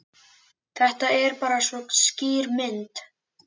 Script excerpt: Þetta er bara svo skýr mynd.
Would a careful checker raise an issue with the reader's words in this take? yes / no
no